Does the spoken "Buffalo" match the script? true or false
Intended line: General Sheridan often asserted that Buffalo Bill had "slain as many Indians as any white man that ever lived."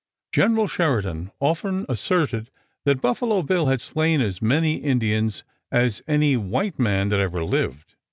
true